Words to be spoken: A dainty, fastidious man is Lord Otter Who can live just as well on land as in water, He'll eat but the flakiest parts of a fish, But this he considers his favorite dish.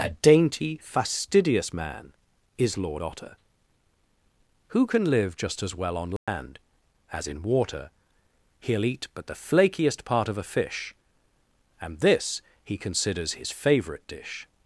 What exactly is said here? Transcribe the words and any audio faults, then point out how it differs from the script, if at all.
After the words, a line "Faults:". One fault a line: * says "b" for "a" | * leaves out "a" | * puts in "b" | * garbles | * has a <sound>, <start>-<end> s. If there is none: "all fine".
A dainty, fastidious man is Lord Otter Who can live just as well on land as in water, He'll eat but the flakiest part of a fish, And this he considers his favorite dish.
Faults:
* has a dropout, 6.2-6.3 s
* says "part" for "parts"
* says "And" for "But"